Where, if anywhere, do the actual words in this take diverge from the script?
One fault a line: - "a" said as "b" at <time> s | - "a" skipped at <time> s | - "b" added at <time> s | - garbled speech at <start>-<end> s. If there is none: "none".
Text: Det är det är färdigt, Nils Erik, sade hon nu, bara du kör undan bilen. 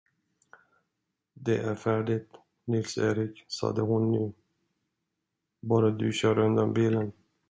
- "det är" skipped at 1.8 s